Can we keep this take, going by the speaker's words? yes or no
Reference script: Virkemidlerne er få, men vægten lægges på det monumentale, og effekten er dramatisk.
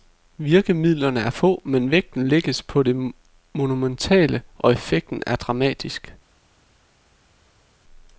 yes